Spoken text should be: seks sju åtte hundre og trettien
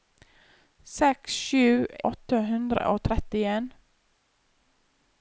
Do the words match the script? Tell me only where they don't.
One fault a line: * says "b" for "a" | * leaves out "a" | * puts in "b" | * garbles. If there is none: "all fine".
all fine